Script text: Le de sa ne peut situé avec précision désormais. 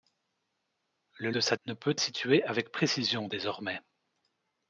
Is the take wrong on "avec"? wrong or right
right